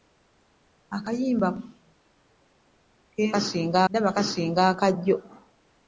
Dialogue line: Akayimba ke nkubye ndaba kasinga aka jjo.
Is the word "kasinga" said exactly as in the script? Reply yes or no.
yes